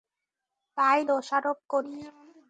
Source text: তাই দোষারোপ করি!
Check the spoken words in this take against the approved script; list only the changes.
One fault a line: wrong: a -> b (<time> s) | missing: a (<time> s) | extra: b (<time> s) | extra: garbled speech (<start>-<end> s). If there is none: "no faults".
no faults